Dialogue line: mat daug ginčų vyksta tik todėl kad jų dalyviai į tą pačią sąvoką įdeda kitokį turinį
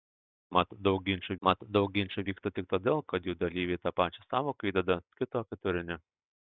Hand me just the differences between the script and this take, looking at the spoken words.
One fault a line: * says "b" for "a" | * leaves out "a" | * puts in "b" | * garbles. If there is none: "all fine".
* puts in "mat daug ginčų"